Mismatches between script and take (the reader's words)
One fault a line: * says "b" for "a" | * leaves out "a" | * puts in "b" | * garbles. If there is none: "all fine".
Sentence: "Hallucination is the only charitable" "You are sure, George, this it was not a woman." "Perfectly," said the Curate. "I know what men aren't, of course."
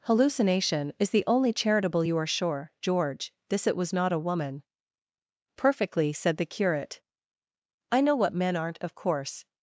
all fine